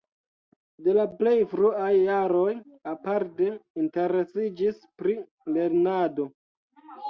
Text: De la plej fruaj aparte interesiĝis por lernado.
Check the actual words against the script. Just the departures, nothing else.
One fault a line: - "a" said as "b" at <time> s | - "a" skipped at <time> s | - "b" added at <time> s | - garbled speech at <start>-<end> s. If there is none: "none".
- "jaroj" added at 1.9 s
- "por" said as "pri" at 5.0 s